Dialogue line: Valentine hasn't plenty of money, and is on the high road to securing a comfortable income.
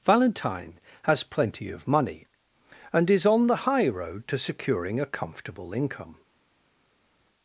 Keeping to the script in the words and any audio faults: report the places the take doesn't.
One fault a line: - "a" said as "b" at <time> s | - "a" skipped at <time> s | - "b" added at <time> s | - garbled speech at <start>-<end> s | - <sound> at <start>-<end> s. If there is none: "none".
- "hasn't" said as "has" at 1.0 s